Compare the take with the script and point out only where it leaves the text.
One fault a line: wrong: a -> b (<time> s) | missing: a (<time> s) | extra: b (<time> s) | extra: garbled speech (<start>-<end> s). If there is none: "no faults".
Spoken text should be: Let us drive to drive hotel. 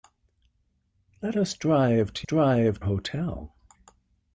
no faults